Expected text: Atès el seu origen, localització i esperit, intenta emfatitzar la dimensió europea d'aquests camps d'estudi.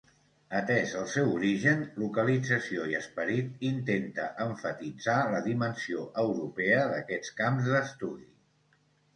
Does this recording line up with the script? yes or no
yes